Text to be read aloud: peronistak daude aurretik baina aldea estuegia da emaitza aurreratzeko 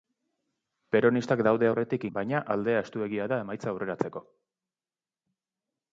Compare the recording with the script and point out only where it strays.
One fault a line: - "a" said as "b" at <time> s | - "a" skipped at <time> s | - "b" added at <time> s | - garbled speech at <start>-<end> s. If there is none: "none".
none